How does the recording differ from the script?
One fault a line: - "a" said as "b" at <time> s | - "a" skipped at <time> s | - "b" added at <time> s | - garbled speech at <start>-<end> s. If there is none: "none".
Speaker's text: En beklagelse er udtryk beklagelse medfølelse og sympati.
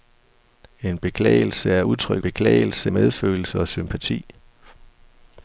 none